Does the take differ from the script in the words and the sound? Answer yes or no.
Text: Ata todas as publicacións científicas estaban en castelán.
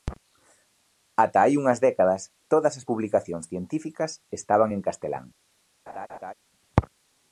yes